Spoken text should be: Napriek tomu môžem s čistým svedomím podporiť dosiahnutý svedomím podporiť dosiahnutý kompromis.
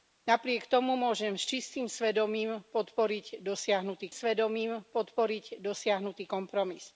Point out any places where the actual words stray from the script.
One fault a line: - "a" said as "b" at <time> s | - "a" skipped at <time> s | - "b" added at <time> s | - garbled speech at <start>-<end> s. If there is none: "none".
none